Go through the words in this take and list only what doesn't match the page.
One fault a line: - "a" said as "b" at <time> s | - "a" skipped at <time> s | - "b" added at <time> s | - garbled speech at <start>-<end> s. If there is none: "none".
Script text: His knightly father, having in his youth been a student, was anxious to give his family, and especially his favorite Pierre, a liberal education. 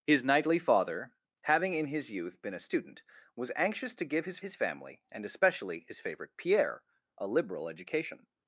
- "his" added at 4.4 s